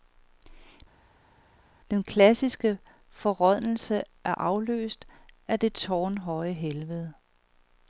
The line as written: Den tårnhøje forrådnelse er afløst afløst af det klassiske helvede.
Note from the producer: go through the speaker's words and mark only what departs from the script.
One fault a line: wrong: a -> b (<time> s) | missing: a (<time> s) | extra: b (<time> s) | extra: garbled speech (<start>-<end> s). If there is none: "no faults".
wrong: tårnhøje -> klassiske (2.0 s)
missing: afløst (5.1 s)
wrong: klassiske -> tårnhøje (5.7 s)